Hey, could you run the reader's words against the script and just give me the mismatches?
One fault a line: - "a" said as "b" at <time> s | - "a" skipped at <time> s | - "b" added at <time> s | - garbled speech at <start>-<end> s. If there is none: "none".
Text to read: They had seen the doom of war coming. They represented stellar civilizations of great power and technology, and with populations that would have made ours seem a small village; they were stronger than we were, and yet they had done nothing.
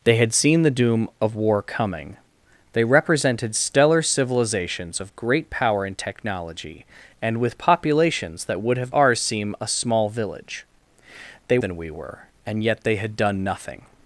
- "made" skipped at 8.9 s
- "were stronger" skipped at 11.6 s